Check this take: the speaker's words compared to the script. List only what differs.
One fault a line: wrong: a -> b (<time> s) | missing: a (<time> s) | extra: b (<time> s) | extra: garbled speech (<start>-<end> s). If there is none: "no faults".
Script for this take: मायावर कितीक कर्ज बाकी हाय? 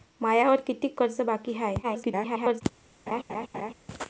extra: garbled speech (1.8-2.6 s)